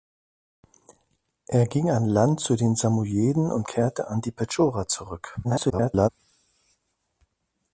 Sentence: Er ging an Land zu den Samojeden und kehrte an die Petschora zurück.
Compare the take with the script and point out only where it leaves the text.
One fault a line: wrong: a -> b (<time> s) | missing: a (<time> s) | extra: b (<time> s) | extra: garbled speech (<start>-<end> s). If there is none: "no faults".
extra: garbled speech (5.4-6.1 s)